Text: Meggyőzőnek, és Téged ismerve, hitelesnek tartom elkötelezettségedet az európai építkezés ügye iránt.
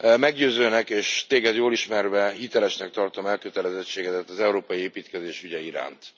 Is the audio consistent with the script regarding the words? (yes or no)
no